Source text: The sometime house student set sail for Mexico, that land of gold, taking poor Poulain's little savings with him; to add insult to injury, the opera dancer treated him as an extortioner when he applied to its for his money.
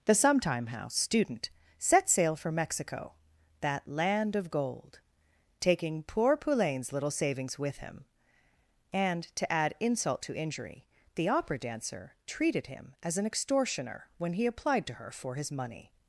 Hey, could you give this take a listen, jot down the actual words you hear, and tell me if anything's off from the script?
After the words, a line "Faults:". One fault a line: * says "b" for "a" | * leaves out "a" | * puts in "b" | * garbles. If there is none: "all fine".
The sometime house student set sail for Mexico, that land of gold, taking poor Poulain's little savings with him; and, to add insult to injury, the opera dancer treated him as an extortioner when he applied to her for his money.
Faults:
* puts in "and"
* says "her" for "its"